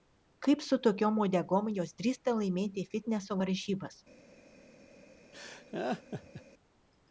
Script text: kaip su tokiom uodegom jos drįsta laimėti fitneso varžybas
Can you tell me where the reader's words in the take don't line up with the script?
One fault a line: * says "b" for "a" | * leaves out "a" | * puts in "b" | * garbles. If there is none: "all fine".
all fine